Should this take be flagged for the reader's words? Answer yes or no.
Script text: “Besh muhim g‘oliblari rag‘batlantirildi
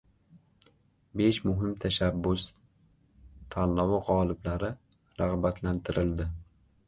yes